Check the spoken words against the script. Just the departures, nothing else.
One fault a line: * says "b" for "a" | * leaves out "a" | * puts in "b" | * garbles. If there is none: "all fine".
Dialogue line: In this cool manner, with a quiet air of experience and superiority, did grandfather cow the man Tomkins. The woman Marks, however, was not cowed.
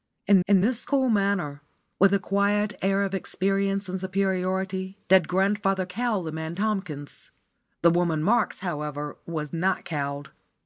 * puts in "in"